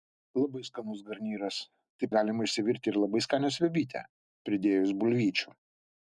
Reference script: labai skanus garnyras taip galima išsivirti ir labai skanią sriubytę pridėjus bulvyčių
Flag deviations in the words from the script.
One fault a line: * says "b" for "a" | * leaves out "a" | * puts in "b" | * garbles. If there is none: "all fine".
all fine